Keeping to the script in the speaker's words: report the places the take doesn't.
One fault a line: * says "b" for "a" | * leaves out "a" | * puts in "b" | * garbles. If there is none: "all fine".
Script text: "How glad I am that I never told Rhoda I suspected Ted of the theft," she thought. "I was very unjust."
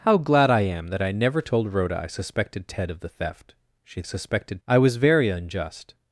* says "suspected" for "thought"